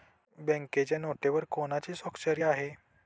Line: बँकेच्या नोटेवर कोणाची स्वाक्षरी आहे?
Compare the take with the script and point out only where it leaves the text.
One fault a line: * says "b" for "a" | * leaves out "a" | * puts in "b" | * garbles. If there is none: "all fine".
all fine